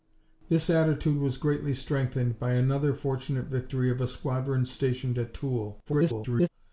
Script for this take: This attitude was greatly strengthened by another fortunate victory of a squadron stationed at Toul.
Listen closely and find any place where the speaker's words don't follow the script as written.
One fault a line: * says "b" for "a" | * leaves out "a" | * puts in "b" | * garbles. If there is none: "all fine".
* garbles